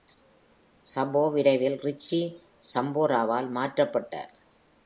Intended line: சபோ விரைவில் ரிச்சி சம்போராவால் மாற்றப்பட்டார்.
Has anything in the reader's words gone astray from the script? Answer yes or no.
no